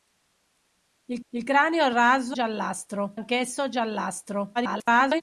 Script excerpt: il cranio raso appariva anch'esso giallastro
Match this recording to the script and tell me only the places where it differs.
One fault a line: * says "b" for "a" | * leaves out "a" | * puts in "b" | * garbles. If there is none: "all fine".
* puts in "il"
* says "giallastro" for "appariva"
* garbles